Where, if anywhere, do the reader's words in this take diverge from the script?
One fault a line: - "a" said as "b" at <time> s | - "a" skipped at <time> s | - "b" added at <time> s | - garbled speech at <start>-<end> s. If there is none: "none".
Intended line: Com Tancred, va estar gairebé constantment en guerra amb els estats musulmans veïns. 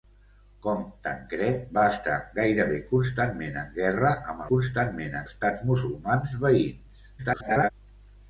- "els" said as "constantment" at 4.5 s
- garbled speech at 7.2-7.7 s